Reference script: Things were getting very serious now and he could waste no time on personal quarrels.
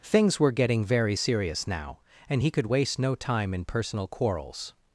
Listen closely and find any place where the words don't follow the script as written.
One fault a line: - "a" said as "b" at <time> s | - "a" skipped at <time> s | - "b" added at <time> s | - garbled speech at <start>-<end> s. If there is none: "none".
- "on" said as "in" at 3.5 s